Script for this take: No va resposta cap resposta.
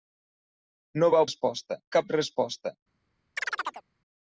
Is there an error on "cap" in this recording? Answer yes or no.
no